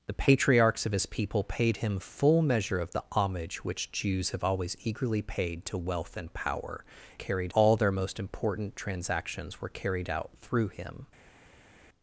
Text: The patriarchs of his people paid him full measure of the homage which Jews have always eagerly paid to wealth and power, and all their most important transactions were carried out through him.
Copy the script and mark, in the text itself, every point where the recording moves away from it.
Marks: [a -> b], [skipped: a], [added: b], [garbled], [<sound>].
The patriarchs of his people paid him full measure of the homage which Jews have always eagerly paid to wealth and power, [and -> carried] all their most important transactions were carried out through him.